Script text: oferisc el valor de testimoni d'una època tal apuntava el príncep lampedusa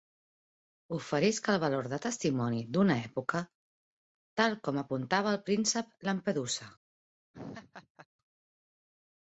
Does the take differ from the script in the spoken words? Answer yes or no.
yes